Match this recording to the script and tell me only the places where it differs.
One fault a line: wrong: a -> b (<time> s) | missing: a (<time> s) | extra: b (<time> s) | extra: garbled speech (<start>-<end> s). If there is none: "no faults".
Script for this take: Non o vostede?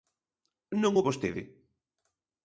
no faults